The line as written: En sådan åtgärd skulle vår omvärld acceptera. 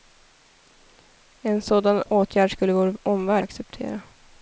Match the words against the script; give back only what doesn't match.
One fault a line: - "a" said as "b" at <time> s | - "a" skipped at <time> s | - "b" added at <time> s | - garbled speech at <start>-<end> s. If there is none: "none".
none